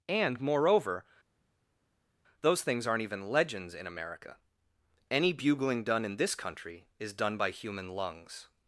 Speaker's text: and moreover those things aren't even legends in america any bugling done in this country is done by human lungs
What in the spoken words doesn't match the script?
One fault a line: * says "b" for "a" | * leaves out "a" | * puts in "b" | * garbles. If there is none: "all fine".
all fine